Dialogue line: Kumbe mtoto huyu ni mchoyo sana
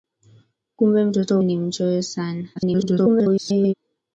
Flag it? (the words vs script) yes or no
yes